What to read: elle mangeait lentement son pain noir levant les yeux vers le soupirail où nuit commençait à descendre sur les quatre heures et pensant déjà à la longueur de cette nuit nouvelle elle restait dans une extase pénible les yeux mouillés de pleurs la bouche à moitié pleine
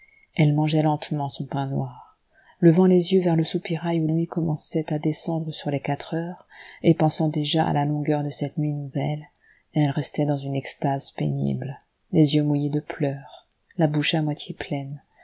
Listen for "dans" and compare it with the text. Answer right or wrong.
right